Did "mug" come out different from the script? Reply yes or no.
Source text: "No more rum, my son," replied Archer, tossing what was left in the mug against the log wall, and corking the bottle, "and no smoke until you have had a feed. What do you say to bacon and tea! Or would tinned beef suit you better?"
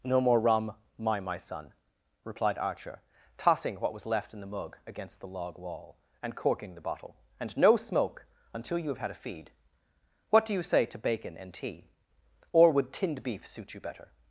no